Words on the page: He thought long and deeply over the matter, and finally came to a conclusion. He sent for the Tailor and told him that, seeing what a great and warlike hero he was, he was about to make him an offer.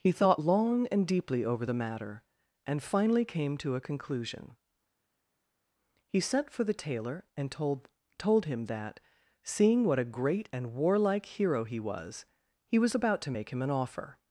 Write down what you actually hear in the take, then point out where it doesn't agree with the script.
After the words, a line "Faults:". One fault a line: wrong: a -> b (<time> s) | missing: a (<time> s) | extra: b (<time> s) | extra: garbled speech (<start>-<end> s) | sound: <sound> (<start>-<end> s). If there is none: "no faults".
He thought long and deeply over the matter, and finally came to a conclusion. He sent for the Tailor and told told him that, seeing what a great and warlike hero he was, he was about to make him an offer.
Faults:
extra: told (8.2 s)